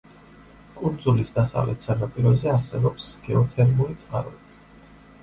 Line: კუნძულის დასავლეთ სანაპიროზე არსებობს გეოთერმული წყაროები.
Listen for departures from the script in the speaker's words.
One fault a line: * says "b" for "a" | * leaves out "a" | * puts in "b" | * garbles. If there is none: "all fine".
all fine